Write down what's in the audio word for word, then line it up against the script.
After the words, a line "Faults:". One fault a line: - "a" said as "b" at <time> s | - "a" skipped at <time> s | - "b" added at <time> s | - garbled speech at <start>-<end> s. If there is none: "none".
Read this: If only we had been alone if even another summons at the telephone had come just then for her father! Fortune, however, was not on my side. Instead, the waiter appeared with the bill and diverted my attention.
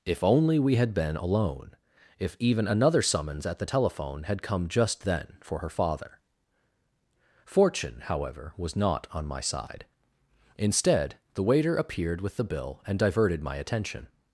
If only we had been alone if even another summons at the telephone had come just then for her father! Fortune, however, was not on my side. Instead, the waiter appeared with the bill and diverted my attention.
Faults:
none